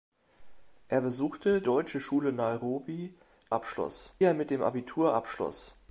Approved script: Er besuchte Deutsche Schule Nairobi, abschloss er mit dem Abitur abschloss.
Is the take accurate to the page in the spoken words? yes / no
yes